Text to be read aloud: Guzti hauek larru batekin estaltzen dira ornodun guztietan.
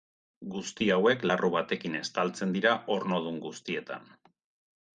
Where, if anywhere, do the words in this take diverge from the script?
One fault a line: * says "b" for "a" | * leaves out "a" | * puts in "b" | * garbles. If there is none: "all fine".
all fine